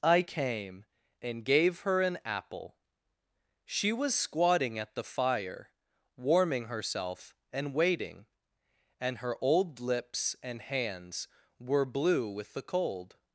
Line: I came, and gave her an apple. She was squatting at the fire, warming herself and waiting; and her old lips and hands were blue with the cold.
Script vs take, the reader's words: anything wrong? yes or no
no